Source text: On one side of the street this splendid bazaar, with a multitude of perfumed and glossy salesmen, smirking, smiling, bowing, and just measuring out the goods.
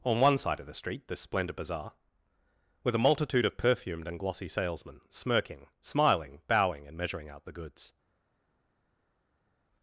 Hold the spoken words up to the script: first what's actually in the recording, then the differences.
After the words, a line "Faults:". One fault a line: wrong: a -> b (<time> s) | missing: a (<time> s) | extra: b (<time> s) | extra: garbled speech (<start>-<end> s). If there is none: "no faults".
On one side of the street this splendid bazaar, with a multitude of perfumed and glossy salesmen, smirking, smiling, bowing, and measuring out the goods.
Faults:
missing: just (7.0 s)